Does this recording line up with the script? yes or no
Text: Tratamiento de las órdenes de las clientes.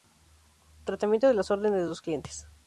no